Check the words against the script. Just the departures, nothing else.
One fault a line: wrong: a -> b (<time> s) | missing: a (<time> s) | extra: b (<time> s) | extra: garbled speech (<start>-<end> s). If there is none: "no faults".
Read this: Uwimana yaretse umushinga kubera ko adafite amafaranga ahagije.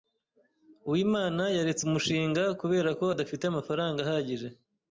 no faults